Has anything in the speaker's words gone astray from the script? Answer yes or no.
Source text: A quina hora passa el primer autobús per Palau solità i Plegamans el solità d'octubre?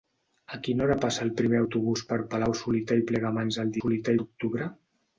no